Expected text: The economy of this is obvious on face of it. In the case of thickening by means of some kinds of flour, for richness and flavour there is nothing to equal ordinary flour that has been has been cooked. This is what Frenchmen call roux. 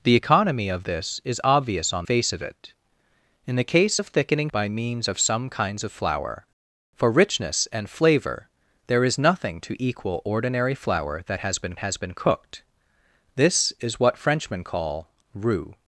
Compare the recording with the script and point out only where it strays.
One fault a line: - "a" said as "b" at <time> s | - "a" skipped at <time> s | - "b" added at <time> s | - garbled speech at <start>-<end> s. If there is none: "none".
none